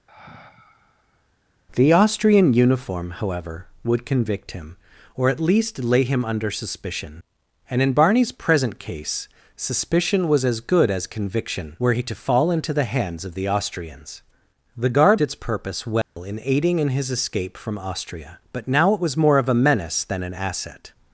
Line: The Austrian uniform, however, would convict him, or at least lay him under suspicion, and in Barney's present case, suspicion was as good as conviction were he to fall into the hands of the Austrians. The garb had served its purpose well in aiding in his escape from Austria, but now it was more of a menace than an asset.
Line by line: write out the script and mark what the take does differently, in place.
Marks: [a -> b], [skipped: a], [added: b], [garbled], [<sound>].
[sigh] The Austrian uniform, however, would convict him, or at least lay him under suspicion, and in Barney's present case, suspicion was as good as conviction were he to fall into the hands of the Austrians. The garb [skipped: had served] its purpose well [dropout] in aiding in his escape from Austria, but now it was more of a menace than an asset.